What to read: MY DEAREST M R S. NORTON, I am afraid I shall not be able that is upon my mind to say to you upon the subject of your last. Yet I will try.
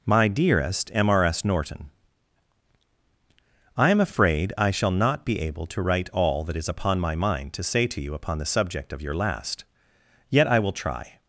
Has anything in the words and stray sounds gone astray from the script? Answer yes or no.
yes